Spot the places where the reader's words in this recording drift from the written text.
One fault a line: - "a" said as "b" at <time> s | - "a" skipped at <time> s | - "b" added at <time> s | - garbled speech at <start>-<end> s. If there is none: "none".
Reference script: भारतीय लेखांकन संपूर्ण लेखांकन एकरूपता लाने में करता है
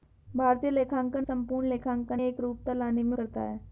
none